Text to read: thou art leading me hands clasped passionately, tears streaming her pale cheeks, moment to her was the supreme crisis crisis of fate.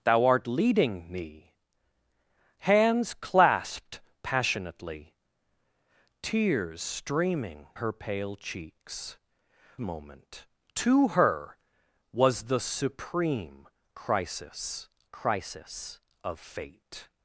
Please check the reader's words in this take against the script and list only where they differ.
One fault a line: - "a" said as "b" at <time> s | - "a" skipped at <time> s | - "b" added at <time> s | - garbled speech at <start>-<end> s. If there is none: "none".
none